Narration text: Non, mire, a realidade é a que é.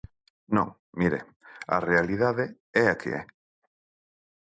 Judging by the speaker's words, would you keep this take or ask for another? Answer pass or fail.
pass